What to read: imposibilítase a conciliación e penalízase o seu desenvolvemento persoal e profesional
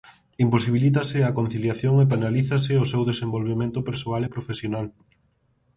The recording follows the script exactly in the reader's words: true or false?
true